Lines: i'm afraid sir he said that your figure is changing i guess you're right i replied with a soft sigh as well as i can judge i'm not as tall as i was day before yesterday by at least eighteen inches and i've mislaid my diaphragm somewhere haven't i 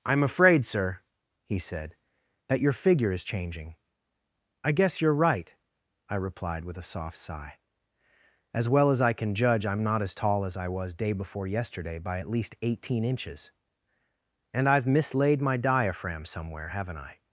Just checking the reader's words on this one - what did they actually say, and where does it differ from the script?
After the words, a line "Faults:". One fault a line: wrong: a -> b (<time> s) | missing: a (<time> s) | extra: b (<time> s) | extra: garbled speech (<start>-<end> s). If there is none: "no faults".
i'm afraid sir he said that your figure is changing i guess you're right i replied with a soft sigh as well as i can judge i'm not as tall as i was day before yesterday by at least eighteen inches and i've mislaid my diaphragm somewhere haven't i
Faults:
no faults